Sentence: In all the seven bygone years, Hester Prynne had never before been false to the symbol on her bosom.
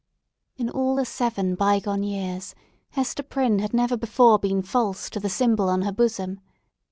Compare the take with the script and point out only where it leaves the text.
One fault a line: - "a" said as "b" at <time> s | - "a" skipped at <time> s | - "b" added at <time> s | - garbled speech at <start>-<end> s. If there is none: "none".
none